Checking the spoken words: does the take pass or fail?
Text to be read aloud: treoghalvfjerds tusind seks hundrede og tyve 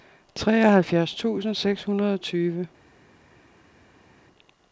pass